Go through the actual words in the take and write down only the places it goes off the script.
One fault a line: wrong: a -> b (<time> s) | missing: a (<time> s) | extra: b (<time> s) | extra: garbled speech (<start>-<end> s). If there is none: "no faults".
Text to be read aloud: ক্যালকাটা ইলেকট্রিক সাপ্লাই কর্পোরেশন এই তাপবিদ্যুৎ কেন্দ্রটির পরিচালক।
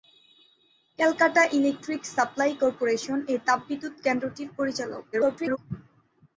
extra: garbled speech (5.1-5.6 s)